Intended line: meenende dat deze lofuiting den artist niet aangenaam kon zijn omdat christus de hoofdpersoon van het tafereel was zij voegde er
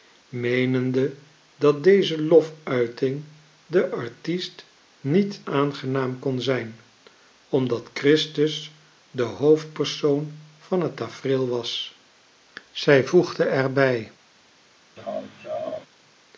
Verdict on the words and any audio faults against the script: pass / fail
fail